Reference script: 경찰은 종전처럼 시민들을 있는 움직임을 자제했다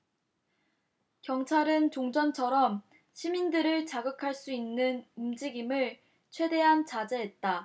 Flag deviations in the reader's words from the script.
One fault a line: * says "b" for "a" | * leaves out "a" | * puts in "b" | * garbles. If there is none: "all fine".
* puts in "자극할 수"
* puts in "최대한"